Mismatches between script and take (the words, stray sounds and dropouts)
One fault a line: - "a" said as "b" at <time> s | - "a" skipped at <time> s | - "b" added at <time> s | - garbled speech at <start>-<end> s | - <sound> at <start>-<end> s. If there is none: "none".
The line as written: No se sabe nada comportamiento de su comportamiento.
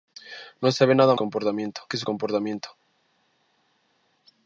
none